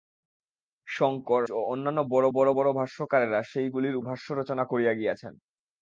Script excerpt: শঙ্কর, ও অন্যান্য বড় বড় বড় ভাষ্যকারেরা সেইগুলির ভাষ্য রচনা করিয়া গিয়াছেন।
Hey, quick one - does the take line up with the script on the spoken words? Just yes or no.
yes